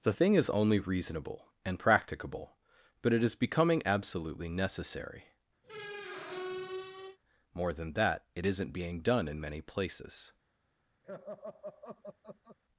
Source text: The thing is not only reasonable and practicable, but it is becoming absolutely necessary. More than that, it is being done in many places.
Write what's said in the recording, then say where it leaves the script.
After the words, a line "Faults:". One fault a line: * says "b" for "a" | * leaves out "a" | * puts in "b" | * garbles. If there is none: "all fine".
The thing is only reasonable and practicable, but it is becoming absolutely necessary. More than that, it isn't being done in many places.
Faults:
* leaves out "not"
* says "isn't" for "is"